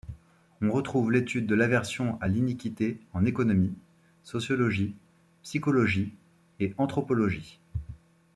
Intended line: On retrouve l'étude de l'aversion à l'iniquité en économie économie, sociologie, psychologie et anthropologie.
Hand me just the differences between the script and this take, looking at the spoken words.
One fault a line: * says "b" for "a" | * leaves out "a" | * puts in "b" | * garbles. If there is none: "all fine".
* leaves out "économie"